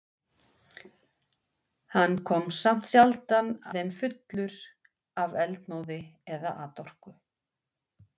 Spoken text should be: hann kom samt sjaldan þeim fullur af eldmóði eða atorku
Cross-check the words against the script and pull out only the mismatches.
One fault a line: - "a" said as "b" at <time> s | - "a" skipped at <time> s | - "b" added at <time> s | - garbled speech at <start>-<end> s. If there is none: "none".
none